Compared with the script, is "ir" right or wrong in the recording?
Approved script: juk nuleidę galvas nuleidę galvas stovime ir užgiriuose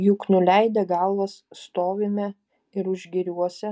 right